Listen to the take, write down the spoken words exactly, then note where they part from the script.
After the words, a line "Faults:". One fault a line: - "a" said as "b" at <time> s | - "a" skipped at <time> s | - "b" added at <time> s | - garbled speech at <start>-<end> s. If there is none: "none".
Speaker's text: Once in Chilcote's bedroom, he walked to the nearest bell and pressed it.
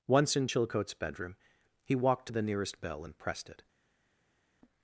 Once in Chilcote's bedroom, he walked to the nearest bell and pressed it.
Faults:
none